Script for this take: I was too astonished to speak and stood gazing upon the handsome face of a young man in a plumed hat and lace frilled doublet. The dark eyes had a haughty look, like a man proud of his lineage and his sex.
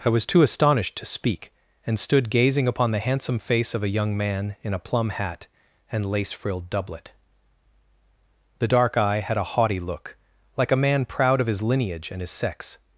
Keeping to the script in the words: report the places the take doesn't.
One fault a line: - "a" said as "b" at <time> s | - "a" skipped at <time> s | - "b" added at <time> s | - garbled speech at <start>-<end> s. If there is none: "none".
- "plumed" said as "plum" at 4.8 s
- "eyes" said as "eye" at 9.0 s